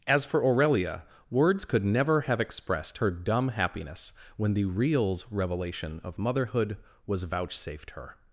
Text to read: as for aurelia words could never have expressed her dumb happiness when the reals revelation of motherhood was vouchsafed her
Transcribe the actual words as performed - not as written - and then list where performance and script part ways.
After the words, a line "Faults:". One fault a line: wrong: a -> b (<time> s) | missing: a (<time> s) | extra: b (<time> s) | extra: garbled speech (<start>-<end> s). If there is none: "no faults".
as for aurelia words could never have expressed her dumb happiness when the reals revelation of motherhood was vouchsafed her
Faults:
no faults